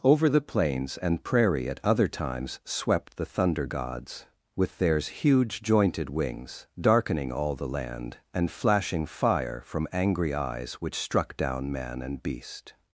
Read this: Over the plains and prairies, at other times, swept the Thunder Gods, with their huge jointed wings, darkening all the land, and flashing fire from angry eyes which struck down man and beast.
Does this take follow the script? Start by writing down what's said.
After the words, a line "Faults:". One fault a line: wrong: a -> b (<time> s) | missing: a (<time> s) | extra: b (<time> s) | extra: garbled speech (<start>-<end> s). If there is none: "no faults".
Over the plains and prairie, at other times, swept the Thunder Gods, with theirs huge jointed wings, darkening all the land, and flashing fire from angry eyes which struck down man and beast.
Faults:
wrong: prairies -> prairie (1.2 s)
wrong: their -> theirs (4.8 s)